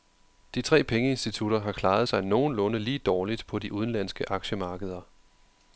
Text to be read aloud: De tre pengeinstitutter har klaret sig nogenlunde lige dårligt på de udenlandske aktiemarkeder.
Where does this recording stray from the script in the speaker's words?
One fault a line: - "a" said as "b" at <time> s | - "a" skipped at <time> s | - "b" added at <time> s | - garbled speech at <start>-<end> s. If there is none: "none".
none